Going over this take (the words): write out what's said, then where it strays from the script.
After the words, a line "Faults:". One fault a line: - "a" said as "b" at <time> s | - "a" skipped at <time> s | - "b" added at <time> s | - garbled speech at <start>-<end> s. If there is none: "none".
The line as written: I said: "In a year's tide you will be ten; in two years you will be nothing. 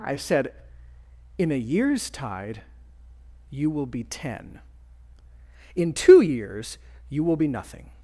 I said: "In a year's tide you will be ten; in two years you will be nothing.
Faults:
none